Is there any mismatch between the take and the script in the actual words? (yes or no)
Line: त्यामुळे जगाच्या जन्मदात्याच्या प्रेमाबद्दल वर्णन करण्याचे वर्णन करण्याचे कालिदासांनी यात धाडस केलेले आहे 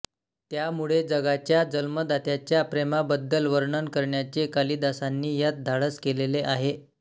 yes